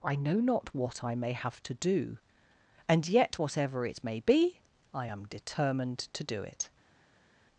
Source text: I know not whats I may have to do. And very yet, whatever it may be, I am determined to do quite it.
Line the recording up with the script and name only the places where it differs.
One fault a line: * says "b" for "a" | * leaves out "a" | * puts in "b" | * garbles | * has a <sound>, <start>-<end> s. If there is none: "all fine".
* says "what" for "whats"
* leaves out "very"
* leaves out "quite"